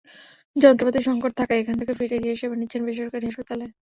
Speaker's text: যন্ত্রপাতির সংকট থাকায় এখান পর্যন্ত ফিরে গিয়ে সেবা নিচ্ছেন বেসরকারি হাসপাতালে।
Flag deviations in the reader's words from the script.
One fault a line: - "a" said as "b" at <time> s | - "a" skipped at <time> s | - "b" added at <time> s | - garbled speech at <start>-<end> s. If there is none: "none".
- "পর্যন্ত" said as "থেকে" at 1.8 s